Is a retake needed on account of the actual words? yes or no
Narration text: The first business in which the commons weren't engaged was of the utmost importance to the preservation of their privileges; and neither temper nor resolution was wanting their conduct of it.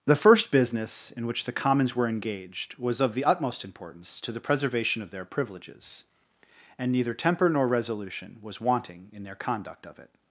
yes